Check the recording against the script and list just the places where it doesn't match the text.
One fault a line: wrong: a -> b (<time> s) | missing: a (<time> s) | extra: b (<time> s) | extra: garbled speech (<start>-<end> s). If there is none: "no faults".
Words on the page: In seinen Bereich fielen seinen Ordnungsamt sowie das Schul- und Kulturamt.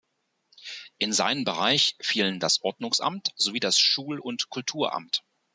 wrong: seinen -> das (2.4 s)